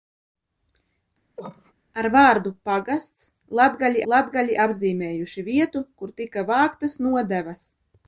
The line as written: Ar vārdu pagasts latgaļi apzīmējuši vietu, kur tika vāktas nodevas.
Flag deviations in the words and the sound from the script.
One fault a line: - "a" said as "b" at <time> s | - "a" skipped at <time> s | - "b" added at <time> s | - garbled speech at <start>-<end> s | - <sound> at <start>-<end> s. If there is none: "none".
- cough at 1.4-1.7 s
- "latgaļi" added at 4.1 s